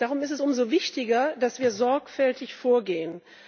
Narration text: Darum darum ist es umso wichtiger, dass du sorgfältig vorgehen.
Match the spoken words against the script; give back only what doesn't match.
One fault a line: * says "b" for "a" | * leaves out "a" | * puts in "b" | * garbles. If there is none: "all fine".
* leaves out "darum"
* says "wir" for "du"